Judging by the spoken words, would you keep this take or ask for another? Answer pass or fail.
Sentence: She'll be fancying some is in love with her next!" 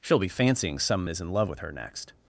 pass